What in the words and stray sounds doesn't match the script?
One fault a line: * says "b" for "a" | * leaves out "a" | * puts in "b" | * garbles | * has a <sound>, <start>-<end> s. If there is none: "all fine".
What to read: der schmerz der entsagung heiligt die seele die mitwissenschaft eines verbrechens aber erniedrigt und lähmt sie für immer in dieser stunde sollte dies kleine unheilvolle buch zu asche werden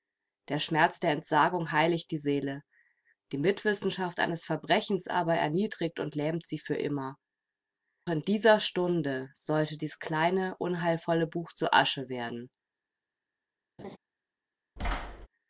* has a laugh, 13.8-14.0 s
* has a thud, 14.8-15.3 s